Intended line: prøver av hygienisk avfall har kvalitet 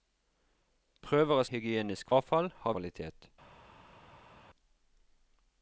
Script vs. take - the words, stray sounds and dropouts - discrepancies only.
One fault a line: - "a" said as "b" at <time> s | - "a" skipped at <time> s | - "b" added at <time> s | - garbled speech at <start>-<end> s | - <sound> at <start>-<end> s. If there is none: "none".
none